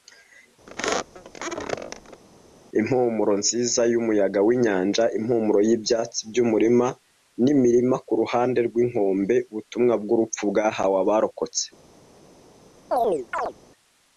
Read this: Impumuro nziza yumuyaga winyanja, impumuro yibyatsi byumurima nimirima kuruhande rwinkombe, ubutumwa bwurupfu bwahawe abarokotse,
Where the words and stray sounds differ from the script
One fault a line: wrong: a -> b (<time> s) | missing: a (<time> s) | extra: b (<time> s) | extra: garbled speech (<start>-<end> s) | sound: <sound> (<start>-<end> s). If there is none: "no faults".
sound: squeak (0.7-2.2 s)
sound: chirp (12.9-13.5 s)